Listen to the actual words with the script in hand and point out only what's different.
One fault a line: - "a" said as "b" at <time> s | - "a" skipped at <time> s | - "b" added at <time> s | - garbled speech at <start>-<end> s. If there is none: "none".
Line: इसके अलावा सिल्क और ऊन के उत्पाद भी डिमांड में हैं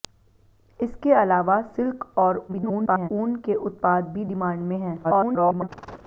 - garbled speech at 2.5-3.1 s
- garbled speech at 5.0-5.7 s